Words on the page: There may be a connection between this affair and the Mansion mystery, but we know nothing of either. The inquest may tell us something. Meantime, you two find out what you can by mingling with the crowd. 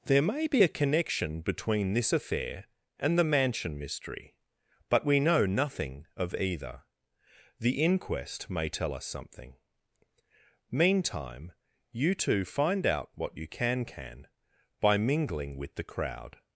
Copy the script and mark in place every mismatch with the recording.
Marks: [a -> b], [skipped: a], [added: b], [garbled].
There may be a connection between this affair and the Mansion mystery, but we know nothing of either. The inquest may tell us something. Meantime, you two find out what you can [added: can] by mingling with the crowd.